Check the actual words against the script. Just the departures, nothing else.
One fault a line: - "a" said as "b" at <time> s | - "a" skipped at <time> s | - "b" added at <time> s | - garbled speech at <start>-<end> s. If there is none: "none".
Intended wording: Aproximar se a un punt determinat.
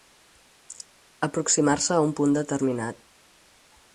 none